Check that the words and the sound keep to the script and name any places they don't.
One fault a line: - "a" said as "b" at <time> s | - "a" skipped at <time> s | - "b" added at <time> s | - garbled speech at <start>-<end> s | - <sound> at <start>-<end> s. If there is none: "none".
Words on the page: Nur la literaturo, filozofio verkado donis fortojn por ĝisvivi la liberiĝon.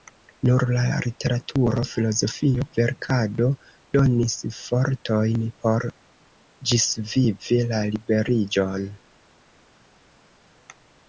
none